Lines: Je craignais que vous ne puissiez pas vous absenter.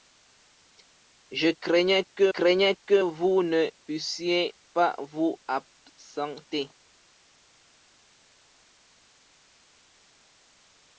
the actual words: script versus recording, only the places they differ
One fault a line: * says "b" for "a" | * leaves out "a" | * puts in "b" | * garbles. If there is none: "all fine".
* puts in "craignais que"